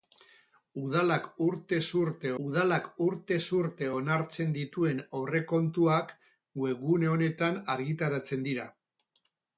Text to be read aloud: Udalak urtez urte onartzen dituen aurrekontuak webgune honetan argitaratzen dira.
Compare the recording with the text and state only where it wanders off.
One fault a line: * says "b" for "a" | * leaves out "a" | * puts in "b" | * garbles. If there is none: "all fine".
* puts in "udalak urtez urte"